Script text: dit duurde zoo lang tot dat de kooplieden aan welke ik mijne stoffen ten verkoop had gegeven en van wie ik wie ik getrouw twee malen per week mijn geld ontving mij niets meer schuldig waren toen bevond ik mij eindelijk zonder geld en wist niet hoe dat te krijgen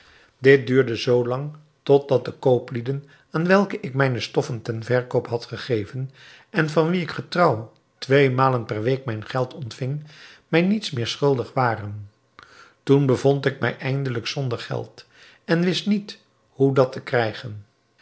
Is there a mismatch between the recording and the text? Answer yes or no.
yes